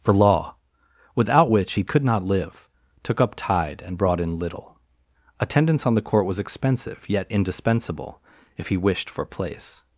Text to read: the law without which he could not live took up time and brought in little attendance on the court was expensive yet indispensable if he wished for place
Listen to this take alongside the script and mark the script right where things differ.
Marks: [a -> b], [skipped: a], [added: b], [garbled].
the law without which he could not live took up [time -> tide] and brought in little attendance on the court was expensive yet indispensable if he wished for place